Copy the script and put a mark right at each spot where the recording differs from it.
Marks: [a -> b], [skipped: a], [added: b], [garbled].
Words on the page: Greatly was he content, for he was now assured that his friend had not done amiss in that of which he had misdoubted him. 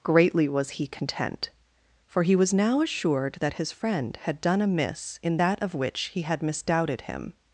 Greatly was he content, for he was now assured that his friend had [skipped: not] done amiss in that of which he had misdoubted him.